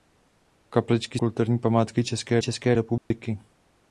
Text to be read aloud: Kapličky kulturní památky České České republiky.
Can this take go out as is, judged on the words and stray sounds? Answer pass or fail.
fail